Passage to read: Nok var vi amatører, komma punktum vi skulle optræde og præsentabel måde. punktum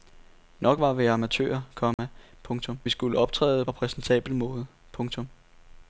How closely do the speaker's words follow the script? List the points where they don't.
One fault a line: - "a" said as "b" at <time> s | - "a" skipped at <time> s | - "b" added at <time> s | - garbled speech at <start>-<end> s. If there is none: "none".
none